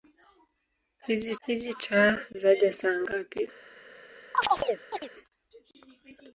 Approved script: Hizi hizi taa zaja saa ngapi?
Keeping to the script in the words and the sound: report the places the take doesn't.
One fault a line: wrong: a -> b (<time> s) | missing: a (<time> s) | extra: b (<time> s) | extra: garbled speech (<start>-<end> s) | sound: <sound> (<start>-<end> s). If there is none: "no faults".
sound: chirp (4.3-5.1 s)